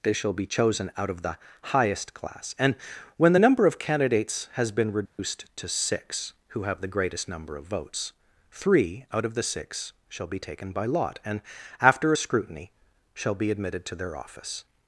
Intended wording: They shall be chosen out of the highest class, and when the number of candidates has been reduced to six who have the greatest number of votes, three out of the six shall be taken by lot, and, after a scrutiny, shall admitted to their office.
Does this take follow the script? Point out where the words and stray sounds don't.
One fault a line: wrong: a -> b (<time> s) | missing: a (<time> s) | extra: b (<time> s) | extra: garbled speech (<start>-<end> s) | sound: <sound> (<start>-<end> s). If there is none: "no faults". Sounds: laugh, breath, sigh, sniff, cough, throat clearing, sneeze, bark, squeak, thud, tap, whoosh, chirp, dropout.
sound: dropout (5.1-5.2 s)
extra: be (13.4 s)